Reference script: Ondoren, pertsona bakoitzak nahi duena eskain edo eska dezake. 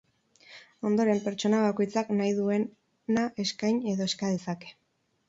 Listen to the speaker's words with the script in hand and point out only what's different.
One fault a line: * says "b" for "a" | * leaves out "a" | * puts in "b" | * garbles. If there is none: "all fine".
all fine